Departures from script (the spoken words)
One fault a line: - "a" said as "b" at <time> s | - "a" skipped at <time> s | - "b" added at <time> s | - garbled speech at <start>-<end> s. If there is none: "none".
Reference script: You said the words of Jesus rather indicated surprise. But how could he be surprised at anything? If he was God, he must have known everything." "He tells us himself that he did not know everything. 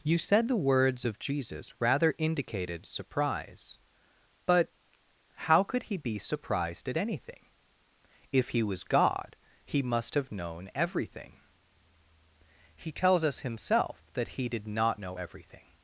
none